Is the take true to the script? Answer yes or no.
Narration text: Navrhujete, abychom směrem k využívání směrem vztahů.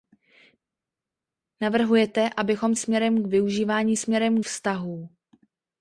yes